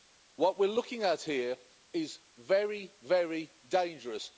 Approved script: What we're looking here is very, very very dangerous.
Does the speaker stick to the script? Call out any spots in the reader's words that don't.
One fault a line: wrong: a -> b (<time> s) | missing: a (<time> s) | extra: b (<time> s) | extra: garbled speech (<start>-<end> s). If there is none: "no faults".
extra: at (1.0 s)
missing: very (3.5 s)